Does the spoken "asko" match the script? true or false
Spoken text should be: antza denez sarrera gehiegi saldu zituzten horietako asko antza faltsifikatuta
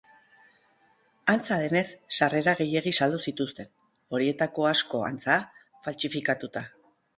true